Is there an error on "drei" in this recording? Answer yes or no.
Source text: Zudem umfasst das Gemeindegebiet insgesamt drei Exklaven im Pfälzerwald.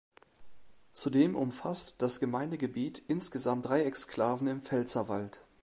no